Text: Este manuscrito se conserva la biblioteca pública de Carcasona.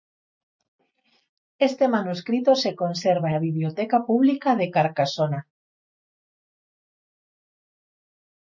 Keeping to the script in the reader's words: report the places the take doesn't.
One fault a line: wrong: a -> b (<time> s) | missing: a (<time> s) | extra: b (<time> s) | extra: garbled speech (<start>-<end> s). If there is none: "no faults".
no faults